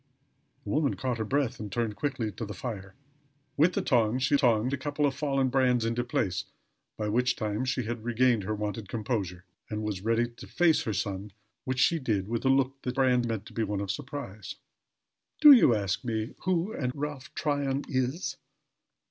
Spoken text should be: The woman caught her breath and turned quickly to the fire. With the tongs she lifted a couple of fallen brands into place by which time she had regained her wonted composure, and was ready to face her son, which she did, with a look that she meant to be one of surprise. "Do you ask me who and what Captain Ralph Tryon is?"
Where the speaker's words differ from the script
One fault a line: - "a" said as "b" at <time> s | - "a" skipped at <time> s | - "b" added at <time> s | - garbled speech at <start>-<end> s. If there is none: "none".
- "lifted" said as "tongs" at 4.3 s
- "she" said as "brands" at 12.9 s
- "what Captain" skipped at 16.9 s